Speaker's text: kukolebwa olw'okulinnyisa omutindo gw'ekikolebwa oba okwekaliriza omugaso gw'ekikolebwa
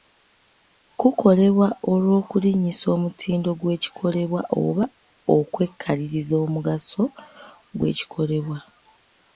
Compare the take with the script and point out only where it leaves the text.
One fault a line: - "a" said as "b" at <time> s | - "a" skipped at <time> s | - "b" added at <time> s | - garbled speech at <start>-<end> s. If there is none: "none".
none